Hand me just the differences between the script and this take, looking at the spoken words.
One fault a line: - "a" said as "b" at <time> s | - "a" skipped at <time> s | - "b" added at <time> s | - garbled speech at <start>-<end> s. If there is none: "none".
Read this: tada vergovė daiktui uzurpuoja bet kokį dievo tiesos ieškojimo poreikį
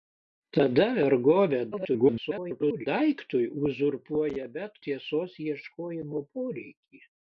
- garbled speech at 1.7-2.9 s
- "kokį dievo" skipped at 4.8 s